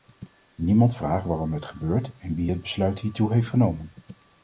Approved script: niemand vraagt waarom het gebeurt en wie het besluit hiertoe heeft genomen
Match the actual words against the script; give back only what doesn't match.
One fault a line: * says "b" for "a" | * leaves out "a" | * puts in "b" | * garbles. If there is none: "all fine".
all fine